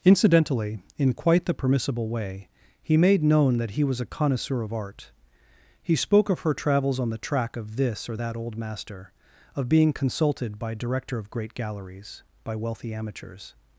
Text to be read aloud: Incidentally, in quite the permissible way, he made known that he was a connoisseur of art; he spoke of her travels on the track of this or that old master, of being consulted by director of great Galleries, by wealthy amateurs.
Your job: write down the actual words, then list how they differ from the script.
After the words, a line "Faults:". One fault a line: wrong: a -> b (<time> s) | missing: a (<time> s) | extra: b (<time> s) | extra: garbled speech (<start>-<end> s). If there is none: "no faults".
Incidentally, in quite the permissible way, he made known that he was a connoisseur of art; he spoke of her travels on the track of this or that old master, of being consulted by director of great Galleries, by wealthy amateurs.
Faults:
no faults